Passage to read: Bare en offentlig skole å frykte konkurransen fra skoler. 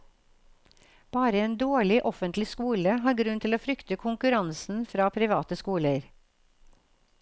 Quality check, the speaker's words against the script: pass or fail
fail